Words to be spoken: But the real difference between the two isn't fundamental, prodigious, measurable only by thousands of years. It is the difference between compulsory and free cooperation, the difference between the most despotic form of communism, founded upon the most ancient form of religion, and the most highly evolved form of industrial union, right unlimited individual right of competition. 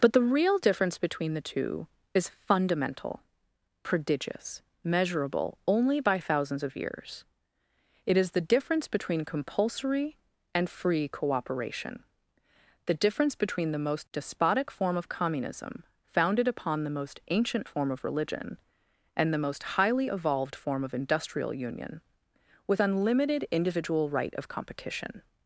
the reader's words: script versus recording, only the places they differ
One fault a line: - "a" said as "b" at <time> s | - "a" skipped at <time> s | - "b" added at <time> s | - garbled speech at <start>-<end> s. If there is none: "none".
- "isn't" said as "is" at 2.1 s
- "right" said as "with" at 22.7 s